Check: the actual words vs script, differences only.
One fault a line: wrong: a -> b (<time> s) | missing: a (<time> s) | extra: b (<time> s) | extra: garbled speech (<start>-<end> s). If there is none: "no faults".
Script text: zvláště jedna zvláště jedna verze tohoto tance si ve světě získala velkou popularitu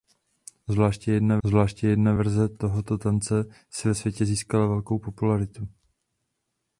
no faults